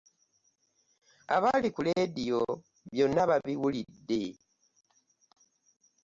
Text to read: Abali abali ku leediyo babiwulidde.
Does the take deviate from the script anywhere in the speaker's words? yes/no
yes